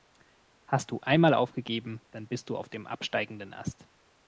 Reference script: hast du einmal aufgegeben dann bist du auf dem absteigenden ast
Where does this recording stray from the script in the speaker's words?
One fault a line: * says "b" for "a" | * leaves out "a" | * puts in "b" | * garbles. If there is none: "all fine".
all fine